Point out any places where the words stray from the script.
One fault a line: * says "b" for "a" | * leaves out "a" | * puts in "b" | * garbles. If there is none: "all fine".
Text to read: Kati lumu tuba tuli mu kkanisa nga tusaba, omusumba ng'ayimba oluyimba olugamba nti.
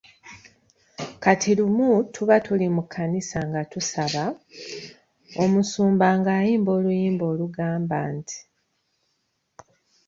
all fine